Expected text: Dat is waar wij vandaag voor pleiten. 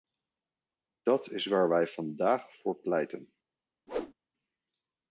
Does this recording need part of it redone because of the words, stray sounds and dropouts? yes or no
yes